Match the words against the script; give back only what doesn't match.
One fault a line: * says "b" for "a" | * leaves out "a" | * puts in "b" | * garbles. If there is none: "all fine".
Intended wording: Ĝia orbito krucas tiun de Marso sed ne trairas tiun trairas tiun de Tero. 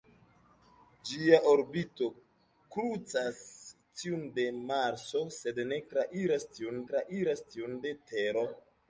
all fine